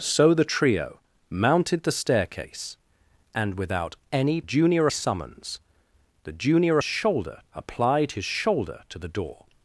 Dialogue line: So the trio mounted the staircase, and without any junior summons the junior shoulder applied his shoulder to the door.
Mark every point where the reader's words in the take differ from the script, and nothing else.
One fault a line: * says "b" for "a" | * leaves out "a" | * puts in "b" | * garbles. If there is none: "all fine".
all fine